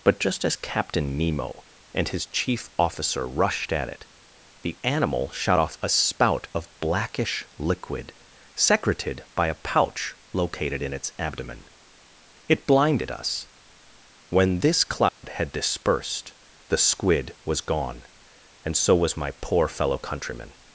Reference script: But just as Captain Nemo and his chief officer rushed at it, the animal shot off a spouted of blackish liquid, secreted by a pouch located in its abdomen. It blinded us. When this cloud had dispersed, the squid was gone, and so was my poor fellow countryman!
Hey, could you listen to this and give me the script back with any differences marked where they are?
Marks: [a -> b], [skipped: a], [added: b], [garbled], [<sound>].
But just as Captain Nemo and his chief officer rushed at it, the animal shot off a [spouted -> spout] of blackish liquid, secreted by a pouch located in its abdomen. It blinded us. When this cloud [dropout] had dispersed, the squid was gone, and so was my poor fellow countryman!